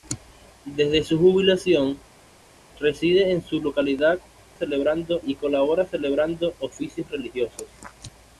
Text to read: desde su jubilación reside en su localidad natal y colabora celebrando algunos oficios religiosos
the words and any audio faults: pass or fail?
fail